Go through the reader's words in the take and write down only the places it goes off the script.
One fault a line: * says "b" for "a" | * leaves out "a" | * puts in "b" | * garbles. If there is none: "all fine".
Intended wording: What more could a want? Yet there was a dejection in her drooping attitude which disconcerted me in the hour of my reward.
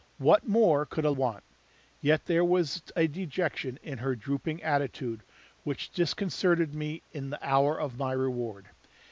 all fine